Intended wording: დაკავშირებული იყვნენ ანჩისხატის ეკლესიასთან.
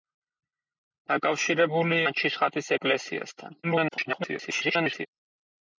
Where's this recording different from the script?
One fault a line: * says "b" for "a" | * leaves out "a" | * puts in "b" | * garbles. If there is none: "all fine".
* leaves out "იყვნენ"
* garbles